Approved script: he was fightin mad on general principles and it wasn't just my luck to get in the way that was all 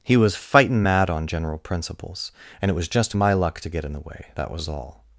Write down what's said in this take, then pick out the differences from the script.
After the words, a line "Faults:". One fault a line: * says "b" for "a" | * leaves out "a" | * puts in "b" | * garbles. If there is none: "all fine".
he was fightin mad on general principles and it was just my luck to get in the way that was all
Faults:
* says "was" for "wasn't"